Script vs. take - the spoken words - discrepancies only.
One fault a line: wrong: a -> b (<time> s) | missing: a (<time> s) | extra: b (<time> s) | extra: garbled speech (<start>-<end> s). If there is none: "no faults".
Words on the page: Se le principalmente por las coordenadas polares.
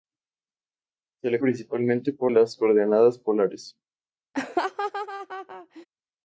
no faults